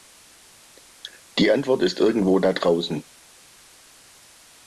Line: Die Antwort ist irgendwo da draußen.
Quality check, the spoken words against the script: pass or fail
pass